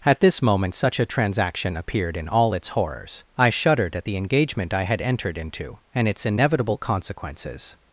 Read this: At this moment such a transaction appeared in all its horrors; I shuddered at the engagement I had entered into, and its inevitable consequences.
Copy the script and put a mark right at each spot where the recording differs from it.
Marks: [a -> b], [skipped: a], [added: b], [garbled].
At this moment such a transaction appeared in all its horrors; I shuddered at the engagement I had entered into, and its inevitable consequences.